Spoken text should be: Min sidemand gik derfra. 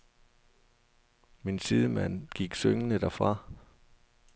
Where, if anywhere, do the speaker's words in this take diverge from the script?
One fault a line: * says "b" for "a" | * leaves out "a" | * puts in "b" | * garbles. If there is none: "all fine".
* puts in "syngende"